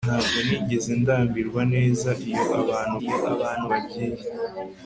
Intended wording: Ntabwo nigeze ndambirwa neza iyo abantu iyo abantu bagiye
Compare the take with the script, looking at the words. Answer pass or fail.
pass